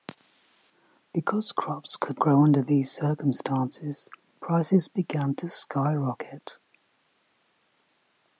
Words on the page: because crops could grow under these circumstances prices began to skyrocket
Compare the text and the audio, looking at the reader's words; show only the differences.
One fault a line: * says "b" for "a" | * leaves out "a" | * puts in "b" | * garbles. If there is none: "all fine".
all fine